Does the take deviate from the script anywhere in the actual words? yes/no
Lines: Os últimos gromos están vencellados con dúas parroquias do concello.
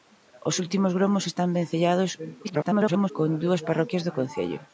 yes